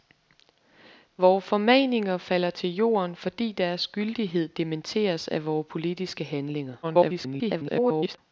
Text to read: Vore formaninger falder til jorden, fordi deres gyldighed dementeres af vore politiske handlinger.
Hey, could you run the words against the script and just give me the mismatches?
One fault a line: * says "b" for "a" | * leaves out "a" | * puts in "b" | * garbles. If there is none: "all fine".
* garbles